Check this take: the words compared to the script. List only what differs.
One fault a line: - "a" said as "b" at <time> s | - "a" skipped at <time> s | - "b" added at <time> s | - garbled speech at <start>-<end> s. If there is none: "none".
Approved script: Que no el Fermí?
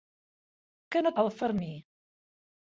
none